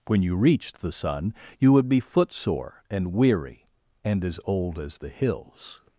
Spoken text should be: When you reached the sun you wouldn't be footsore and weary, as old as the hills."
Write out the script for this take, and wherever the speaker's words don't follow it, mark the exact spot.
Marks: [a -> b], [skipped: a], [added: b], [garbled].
When you reached the sun you [wouldn't -> would] be footsore and weary, [added: and] as old as the hills."